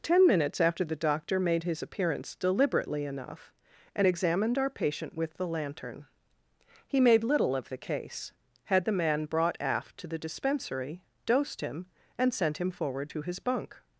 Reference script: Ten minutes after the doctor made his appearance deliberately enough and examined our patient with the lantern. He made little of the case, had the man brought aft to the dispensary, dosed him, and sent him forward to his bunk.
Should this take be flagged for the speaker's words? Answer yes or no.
no